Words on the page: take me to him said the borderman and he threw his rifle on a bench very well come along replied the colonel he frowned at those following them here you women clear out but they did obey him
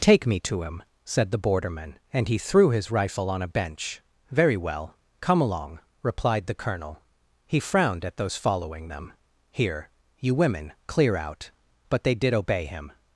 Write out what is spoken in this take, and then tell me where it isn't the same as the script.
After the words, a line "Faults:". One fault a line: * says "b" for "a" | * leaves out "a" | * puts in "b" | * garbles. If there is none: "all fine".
take me to him said the borderman and he threw his rifle on a bench very well come along replied the colonel he frowned at those following them here you women clear out but they did obey him
Faults:
all fine